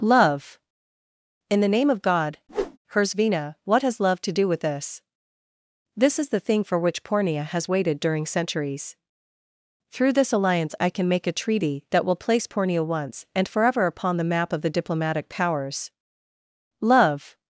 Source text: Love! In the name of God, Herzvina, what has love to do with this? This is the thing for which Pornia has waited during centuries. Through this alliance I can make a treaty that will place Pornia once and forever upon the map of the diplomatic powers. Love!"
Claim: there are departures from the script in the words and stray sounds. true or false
true